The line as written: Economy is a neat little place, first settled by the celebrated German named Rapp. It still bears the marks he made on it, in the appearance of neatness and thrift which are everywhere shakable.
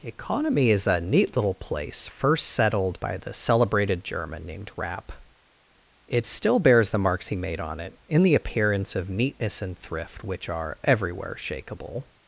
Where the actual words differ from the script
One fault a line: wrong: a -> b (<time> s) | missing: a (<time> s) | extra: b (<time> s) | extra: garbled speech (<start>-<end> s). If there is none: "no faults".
no faults